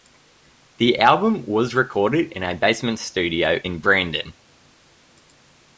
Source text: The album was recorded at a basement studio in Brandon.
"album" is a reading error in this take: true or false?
false